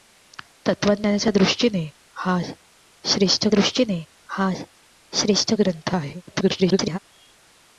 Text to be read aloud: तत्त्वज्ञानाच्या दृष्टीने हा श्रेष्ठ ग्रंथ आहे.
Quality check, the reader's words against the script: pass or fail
fail